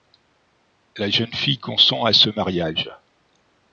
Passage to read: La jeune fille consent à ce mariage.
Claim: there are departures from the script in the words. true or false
false